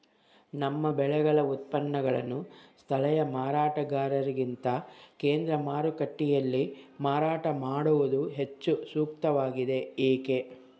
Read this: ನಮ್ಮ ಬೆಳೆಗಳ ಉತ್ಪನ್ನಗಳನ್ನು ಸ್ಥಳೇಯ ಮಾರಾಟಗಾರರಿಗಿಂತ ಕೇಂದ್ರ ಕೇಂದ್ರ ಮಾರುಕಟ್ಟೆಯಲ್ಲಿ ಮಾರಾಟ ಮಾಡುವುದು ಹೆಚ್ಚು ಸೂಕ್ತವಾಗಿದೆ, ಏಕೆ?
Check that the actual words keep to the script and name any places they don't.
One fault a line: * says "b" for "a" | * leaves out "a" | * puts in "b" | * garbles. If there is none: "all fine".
* leaves out "ಕೇಂದ್ರ"